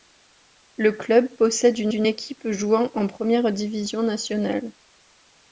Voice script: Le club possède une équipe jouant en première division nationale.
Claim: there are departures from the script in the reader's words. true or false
true